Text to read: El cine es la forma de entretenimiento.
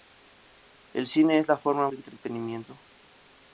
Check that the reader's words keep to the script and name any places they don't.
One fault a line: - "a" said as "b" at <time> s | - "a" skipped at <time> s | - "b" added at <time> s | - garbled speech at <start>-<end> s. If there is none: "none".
none